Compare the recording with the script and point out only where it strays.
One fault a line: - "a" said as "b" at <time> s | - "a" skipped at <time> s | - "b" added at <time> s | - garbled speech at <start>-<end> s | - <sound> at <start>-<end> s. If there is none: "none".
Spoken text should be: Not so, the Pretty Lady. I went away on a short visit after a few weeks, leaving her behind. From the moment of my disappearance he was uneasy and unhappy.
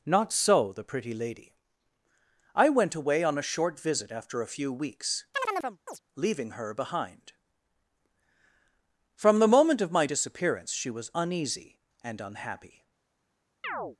- chirp at 5.3-6.0 s
- "he" said as "she" at 10.7 s
- chirp at 13.6-14.0 s